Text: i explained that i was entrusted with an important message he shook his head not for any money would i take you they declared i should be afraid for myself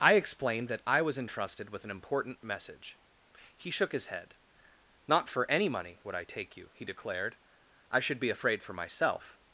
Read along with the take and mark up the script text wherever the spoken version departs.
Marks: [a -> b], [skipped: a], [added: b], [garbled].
i explained that i was entrusted with an important message he shook his head not for any money would i take you [they -> he] declared i should be afraid for myself